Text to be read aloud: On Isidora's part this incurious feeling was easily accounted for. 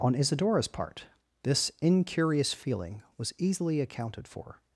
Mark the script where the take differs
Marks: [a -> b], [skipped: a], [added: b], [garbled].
On Isidora's part this incurious feeling was easily accounted for.